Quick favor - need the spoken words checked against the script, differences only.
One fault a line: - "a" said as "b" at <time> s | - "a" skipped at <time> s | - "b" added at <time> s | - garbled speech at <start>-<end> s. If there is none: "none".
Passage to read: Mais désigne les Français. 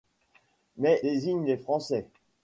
none